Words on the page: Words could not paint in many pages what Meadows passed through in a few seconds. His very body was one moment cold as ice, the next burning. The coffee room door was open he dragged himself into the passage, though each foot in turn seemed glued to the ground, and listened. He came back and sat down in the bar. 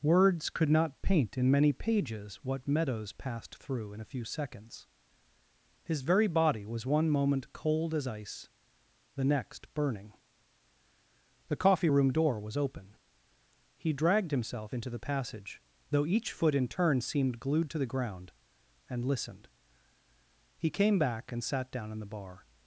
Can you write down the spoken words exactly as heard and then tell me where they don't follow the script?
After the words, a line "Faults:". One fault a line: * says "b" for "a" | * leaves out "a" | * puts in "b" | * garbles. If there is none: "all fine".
Words could not paint in many pages what Meadows passed through in a few seconds. His very body was one moment cold as ice, the next burning. The coffee room door was open he dragged himself into the passage, though each foot in turn seemed glued to the ground, and listened. He came back and sat down in the bar.
Faults:
all fine